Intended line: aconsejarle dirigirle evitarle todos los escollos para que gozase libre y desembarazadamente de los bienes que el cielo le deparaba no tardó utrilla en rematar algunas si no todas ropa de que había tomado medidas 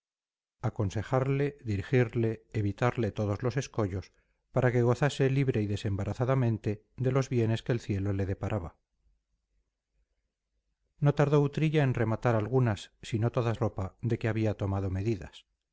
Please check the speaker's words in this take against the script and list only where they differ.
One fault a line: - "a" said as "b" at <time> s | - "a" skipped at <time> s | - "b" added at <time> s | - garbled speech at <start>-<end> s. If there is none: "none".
none